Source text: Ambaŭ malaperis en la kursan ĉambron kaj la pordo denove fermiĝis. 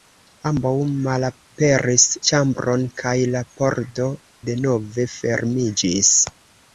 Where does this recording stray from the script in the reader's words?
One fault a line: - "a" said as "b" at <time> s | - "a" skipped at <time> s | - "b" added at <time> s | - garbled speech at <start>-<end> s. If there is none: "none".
- "en la kursan" skipped at 2.0 s